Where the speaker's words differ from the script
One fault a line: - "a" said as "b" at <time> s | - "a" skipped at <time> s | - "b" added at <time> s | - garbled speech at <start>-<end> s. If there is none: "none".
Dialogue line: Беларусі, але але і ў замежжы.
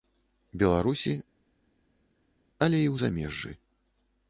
- "але" skipped at 2.8 s